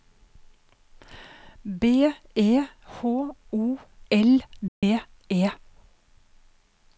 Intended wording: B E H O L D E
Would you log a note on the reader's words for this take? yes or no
no